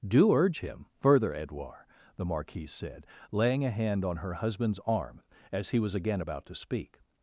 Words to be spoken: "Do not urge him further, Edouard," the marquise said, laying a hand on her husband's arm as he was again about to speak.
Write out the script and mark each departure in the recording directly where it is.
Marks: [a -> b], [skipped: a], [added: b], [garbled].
"Do [skipped: not] urge him further, Edouard," the marquise said, laying a hand on her husband's arm as he was again about to speak.